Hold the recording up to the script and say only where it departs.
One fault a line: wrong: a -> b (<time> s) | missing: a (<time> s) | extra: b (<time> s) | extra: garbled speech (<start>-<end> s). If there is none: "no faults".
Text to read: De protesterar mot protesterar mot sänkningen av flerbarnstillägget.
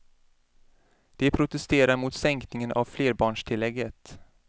missing: protesterar mot (2.1 s)